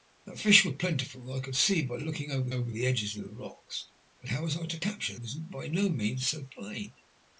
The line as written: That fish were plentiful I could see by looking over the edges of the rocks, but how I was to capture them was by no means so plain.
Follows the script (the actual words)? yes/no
no